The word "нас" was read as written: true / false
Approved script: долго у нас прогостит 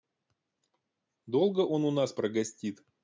true